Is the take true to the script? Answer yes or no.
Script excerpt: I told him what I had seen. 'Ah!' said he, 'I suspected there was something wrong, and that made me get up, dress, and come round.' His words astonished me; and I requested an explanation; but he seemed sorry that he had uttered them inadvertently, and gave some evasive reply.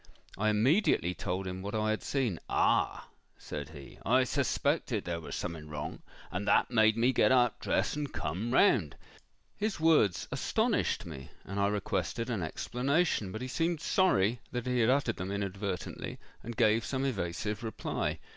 no